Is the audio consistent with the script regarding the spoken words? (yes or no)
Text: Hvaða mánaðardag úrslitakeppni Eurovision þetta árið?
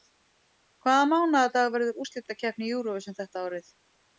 no